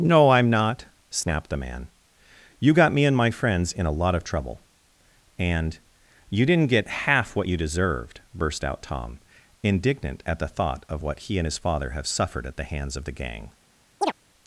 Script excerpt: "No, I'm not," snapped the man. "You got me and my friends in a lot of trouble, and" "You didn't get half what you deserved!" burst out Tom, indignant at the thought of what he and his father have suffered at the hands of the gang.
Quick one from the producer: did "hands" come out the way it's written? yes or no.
yes